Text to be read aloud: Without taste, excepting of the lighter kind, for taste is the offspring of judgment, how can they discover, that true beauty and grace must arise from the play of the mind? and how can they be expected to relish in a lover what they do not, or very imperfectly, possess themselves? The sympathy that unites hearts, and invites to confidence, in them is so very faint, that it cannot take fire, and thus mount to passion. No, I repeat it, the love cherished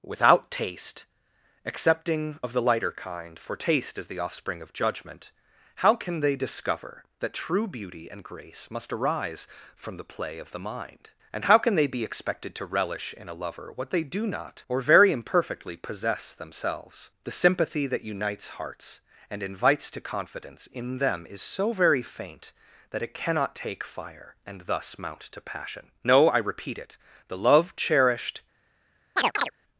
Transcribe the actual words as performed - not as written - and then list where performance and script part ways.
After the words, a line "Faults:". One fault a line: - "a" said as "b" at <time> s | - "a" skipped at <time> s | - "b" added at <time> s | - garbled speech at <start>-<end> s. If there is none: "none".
Without taste, excepting of the lighter kind, for taste is the offspring of judgment, how can they discover, that true beauty and grace must arise from the play of the mind? and how can they be expected to relish in a lover what they do not, or very imperfectly, possess themselves? The sympathy that unites hearts, and invites to confidence, in them is so very faint, that it cannot take fire, and thus mount to passion. No, I repeat it, the love cherished
Faults:
none